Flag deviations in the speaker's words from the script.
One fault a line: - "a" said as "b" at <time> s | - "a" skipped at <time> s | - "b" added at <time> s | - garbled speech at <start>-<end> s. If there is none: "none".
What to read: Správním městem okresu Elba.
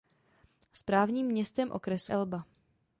none